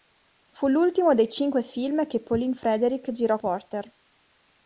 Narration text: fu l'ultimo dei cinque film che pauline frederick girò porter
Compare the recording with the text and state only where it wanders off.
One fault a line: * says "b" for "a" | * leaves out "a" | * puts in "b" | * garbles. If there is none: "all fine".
all fine